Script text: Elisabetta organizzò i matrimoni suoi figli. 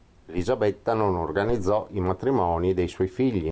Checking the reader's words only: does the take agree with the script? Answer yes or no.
no